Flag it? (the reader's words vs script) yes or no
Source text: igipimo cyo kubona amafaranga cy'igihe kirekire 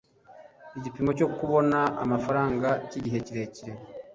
no